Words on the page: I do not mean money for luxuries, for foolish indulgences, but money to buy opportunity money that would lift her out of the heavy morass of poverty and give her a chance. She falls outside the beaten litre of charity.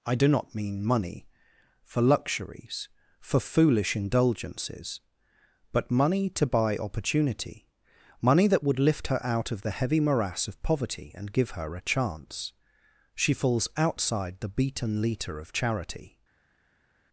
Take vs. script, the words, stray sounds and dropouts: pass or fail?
pass